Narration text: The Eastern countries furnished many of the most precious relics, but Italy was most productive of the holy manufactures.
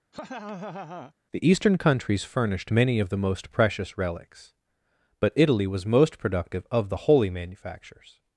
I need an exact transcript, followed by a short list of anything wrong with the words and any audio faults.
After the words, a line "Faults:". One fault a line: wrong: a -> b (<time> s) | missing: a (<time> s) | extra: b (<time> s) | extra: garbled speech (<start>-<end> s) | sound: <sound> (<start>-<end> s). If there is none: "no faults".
The Eastern countries furnished many of the most precious relics, but Italy was most productive of the holy manufactures.
Faults:
sound: laugh (0.1-1.1 s)